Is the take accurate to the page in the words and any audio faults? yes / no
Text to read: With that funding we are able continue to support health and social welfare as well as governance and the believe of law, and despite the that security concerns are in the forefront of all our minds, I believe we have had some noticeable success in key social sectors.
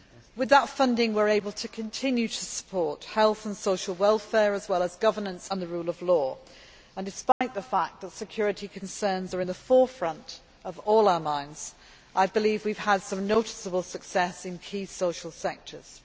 no